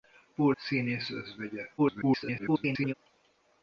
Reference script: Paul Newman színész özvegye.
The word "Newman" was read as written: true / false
false